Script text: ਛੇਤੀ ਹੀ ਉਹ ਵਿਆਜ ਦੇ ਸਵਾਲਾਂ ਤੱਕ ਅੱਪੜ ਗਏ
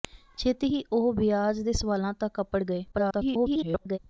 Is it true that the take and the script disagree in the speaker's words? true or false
true